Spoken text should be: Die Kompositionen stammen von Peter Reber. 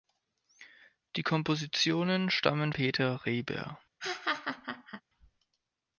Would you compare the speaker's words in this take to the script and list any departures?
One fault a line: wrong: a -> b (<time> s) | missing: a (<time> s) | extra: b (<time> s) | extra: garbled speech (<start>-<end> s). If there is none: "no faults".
missing: von (2.7 s)